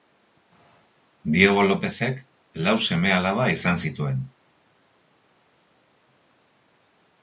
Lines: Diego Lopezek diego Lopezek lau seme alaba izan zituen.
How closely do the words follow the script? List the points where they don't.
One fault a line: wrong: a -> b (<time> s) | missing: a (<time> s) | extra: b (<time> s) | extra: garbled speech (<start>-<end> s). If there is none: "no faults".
missing: diego Lopezek (2.2 s)